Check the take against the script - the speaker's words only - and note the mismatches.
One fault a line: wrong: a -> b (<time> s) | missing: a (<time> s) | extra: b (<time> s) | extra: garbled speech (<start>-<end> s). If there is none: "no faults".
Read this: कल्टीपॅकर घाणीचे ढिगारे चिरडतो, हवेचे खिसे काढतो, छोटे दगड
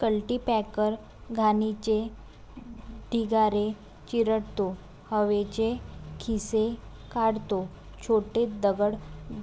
no faults